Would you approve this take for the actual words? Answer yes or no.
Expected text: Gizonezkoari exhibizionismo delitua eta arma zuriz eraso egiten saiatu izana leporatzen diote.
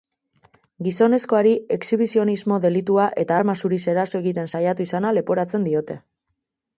yes